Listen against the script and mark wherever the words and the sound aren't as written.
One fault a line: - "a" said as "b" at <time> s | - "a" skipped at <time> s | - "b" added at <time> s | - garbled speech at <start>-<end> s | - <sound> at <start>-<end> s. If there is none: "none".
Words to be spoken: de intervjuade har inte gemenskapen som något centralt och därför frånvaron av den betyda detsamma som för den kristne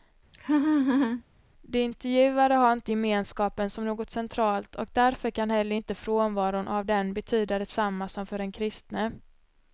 - laugh at 0.3-1.2 s
- "kan heller inte" added at 5.3 s